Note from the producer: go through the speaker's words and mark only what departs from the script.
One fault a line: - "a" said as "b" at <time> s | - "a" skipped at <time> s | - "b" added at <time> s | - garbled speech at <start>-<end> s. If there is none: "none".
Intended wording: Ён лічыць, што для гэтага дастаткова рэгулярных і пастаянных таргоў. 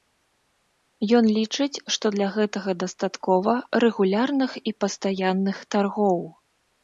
none